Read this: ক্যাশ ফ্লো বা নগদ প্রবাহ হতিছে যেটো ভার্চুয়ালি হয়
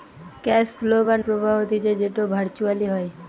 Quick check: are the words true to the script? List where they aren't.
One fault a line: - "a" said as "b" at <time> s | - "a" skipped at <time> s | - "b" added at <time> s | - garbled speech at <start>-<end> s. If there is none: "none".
- "নগদ" skipped at 1.2 s